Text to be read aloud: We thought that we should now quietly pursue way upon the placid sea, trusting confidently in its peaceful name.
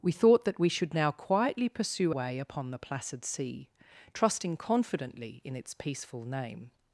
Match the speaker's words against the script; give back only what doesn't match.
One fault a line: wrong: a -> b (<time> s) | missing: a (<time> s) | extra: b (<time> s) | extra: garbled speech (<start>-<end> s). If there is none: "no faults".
no faults